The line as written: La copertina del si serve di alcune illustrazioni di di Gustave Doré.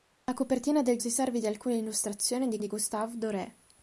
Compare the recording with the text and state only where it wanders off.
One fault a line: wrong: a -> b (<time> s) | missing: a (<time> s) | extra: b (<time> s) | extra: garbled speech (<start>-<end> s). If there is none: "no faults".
no faults